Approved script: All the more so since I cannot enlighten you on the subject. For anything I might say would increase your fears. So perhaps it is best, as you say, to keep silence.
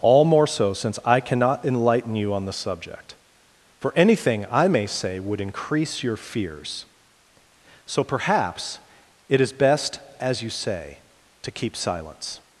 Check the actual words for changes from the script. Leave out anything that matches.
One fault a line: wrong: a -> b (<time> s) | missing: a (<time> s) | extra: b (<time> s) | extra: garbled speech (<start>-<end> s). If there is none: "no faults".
missing: the (0.2 s)
wrong: might -> may (4.7 s)